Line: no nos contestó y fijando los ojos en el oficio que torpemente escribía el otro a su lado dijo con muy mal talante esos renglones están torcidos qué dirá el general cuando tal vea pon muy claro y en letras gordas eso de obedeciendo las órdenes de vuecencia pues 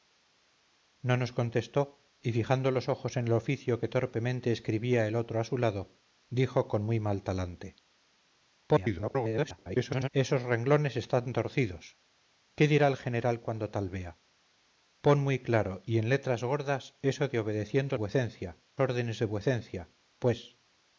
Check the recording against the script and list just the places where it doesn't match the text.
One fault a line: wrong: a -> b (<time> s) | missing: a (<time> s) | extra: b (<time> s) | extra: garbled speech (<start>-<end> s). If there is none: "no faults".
extra: garbled speech (8.7-10.1 s)
wrong: las -> vuecencia (17.9 s)